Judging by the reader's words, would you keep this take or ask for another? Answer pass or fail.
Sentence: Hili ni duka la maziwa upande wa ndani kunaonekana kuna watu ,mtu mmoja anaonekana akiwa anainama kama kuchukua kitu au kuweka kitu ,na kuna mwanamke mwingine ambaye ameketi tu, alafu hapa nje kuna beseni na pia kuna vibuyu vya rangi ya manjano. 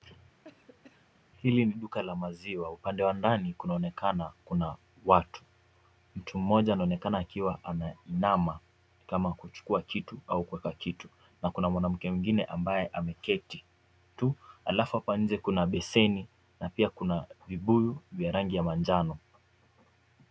pass